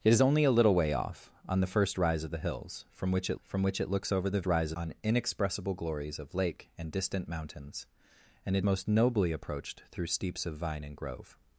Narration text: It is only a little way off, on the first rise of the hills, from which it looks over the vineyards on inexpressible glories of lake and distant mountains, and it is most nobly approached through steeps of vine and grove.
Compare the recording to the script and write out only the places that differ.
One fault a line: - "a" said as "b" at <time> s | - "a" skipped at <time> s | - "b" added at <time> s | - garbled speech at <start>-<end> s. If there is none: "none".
- "from which it" added at 3.4 s
- "vineyards" said as "rise" at 4.4 s
- "is" skipped at 8.7 s